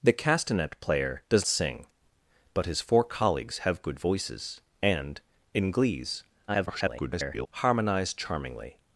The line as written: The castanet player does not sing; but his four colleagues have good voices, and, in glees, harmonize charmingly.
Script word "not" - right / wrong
wrong